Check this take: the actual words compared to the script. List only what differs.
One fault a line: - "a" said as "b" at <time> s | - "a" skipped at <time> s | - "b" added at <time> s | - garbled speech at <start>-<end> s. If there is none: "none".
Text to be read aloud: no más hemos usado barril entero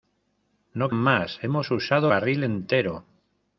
none